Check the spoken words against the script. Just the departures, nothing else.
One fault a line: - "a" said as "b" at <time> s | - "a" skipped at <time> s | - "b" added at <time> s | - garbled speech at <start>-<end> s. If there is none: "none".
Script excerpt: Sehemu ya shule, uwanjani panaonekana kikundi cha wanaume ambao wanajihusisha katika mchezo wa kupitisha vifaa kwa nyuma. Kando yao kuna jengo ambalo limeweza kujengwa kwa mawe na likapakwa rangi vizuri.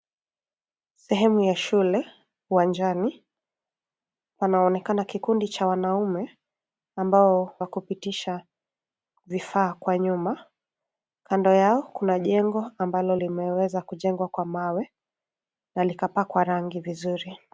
- "wanajihusisha katika mchezo" skipped at 7.5 s